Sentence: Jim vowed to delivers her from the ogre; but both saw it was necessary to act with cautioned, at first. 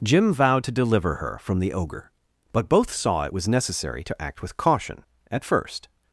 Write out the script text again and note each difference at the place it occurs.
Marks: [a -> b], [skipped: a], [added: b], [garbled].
Jim vowed to [delivers -> deliver] her from the ogre; but both saw it was necessary to act with [cautioned, -> caution] at first.